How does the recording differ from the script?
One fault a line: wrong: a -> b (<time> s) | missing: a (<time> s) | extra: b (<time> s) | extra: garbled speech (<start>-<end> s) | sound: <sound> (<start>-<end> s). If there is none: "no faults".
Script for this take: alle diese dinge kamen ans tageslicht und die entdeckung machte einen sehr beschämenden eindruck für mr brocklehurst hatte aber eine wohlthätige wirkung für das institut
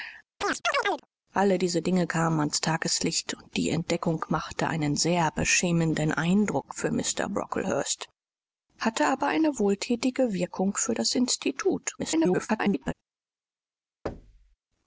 sound: chirp (0.4-1.1 s)
extra: garbled speech (12.0-12.9 s)
sound: thud (14.1-14.6 s)